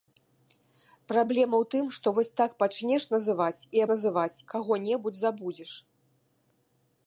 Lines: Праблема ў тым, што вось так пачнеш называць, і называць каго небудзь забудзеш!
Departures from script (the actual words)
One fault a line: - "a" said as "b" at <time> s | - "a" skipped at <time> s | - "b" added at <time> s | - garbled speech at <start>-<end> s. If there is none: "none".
none